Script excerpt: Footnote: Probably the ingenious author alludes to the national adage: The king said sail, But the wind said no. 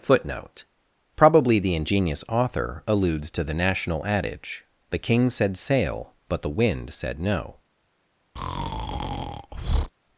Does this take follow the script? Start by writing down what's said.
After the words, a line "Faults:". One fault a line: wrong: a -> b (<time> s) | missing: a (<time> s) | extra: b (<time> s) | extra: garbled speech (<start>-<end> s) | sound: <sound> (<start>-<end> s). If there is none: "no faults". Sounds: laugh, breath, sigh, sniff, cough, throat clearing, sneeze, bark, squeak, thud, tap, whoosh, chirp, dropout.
Footnote: Probably the ingenious author alludes to the national adage: The king said sail, But the wind said no.
Faults:
sound: breath (8.4-9.9 s)